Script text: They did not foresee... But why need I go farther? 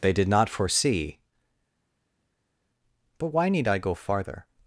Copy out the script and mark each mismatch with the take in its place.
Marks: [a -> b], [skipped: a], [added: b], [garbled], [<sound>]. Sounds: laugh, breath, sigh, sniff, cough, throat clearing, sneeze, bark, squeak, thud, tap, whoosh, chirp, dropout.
They did not foresee... But why need I go farther?